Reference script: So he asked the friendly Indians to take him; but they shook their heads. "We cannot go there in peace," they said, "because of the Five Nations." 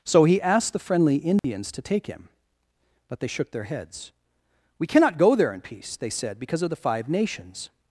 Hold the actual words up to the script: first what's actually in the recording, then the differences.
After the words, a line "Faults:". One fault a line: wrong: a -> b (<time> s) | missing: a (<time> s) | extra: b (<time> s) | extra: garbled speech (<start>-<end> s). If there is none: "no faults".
So he asked the friendly Indians to take him; but they shook their heads. "We cannot go there in peace," they said, "because of the Five Nations."
Faults:
no faults